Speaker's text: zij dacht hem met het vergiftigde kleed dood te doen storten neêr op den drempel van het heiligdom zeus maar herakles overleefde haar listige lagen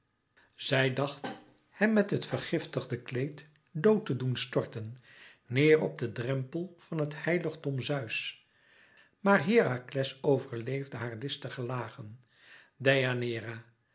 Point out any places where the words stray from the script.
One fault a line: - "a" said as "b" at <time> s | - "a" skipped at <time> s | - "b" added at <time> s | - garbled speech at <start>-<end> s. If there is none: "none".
none